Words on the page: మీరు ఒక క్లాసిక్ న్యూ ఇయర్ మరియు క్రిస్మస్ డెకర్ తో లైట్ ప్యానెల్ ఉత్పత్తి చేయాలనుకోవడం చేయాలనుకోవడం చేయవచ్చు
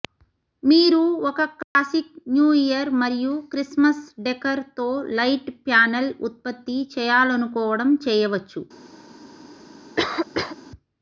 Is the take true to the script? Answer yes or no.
no